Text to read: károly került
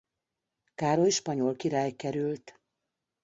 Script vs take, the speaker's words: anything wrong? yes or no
yes